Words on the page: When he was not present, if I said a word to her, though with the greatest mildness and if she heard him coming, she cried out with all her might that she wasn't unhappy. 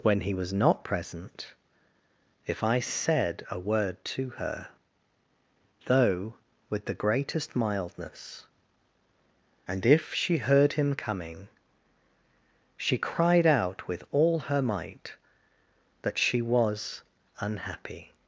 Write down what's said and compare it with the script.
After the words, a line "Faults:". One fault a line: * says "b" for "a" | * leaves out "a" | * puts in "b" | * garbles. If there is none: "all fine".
When he was not present, if I said a word to her, though with the greatest mildness and if she heard him coming, she cried out with all her might that she was unhappy.
Faults:
* says "was" for "wasn't"